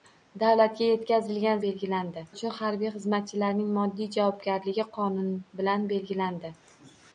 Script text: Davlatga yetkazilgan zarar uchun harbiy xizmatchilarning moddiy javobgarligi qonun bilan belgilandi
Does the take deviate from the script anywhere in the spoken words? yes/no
yes